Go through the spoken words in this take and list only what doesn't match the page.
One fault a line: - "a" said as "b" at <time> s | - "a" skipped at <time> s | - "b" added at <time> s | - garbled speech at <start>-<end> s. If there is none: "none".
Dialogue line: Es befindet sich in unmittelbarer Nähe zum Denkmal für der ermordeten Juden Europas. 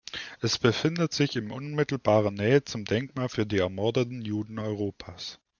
- "der" said as "die" at 3.5 s